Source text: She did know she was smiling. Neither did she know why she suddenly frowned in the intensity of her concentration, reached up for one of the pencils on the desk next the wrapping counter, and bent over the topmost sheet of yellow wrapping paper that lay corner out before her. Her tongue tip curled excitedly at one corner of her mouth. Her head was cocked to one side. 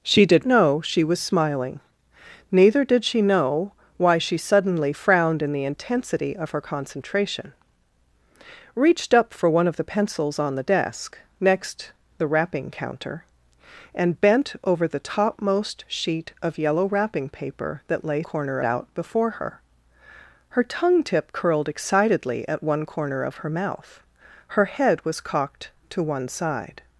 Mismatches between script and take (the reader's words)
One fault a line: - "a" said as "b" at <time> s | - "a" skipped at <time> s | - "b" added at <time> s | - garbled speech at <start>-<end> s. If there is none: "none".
none